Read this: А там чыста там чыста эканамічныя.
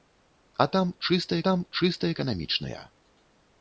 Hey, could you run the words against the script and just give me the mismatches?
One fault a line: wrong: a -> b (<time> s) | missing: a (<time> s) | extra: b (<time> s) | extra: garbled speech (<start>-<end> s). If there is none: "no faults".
no faults